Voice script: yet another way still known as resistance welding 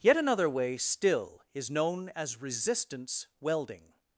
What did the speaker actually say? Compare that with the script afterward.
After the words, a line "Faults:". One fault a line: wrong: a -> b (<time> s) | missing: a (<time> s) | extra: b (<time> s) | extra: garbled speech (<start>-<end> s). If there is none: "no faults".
yet another way still is known as resistance welding
Faults:
extra: is (1.5 s)